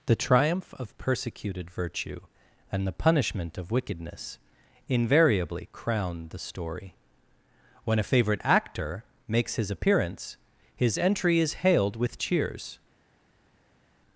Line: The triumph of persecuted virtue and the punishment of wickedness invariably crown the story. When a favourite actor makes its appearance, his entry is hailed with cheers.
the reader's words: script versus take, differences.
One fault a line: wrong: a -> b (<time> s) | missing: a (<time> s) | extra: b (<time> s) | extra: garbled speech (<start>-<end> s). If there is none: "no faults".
wrong: its -> his (9.6 s)